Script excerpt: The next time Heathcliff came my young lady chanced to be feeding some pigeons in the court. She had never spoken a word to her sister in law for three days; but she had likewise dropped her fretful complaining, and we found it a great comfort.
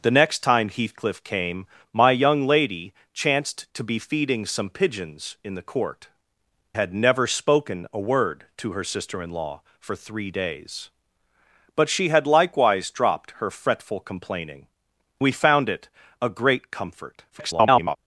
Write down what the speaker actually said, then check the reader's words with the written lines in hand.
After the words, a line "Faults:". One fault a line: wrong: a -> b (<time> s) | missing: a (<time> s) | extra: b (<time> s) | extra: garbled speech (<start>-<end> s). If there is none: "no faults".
The next time Heathcliff came my young lady chanced to be feeding some pigeons in the court. Had never spoken a word to her sister in law for three days; but she had likewise dropped her fretful complaining, we found it a great comfort. [garbled]
Faults:
missing: She (6.1 s)
missing: and (14.7 s)
extra: garbled speech (17.3-18.0 s)